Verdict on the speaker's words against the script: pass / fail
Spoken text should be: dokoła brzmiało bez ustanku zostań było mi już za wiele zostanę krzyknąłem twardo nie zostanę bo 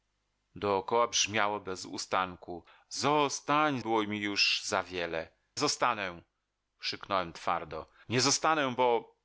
pass